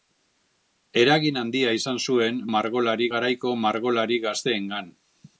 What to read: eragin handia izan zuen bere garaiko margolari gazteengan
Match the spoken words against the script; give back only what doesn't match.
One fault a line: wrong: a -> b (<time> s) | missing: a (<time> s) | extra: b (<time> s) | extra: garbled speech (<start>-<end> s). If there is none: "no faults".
wrong: bere -> margolari (2.6 s)